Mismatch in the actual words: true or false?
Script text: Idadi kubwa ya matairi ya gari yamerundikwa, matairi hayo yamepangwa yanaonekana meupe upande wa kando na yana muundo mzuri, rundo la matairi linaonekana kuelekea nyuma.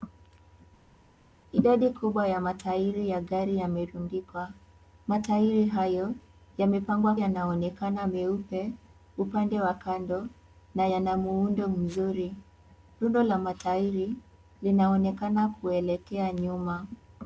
false